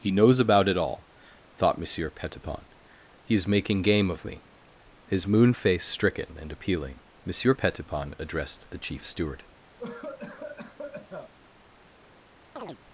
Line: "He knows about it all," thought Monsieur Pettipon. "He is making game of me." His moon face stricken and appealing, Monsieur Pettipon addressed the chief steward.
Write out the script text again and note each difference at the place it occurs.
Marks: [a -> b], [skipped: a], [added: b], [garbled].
"He knows about it all," thought Monsieur Pettipon. "He is making game of me." His moon face stricken and appealing, Monsieur Pettipon addressed the chief steward.